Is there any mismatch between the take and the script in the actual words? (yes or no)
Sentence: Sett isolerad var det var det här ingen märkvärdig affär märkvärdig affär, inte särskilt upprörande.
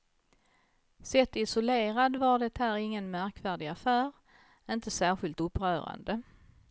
yes